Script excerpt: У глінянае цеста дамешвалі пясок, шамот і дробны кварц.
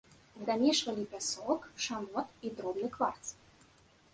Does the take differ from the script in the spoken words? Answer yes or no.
yes